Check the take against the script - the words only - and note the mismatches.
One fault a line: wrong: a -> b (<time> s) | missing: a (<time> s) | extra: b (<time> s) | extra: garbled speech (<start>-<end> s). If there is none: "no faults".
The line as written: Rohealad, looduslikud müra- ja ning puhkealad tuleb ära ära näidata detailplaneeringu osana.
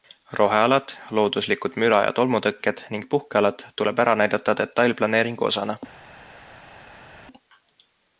extra: tolmutõkked (2.2 s)
missing: ära (4.2 s)